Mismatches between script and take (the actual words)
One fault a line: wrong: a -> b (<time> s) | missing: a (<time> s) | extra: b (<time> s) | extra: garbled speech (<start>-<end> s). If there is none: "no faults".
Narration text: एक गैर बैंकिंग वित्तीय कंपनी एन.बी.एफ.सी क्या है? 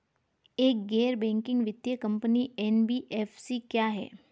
no faults